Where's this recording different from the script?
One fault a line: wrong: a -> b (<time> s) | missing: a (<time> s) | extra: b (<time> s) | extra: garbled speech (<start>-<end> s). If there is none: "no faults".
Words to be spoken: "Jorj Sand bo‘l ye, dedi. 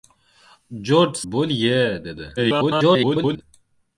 missing: Sand (1.1 s)
extra: garbled speech (2.4-3.4 s)